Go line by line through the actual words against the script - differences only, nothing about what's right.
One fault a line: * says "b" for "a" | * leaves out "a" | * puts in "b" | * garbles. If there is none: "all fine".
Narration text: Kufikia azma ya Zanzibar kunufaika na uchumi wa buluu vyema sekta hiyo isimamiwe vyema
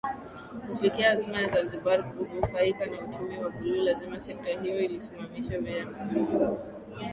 * says "lazima" for "vyema"